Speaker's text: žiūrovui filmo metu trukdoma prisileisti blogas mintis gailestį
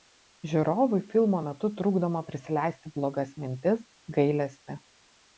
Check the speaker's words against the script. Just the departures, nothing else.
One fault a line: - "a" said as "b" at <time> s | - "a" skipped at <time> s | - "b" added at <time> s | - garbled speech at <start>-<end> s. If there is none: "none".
none